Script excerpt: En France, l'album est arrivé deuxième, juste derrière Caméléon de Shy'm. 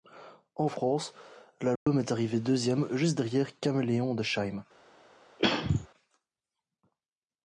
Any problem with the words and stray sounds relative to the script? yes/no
yes